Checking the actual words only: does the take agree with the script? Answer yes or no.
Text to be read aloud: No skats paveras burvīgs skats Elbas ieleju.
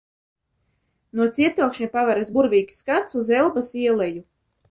no